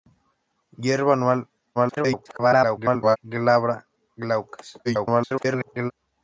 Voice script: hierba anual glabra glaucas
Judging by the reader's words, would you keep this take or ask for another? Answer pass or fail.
fail